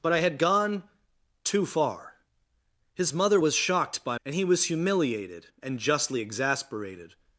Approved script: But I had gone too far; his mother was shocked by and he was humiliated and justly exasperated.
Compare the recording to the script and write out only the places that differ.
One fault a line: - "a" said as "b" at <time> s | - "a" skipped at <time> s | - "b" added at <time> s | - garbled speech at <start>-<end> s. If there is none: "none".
none